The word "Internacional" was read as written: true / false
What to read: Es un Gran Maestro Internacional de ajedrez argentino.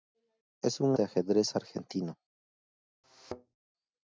false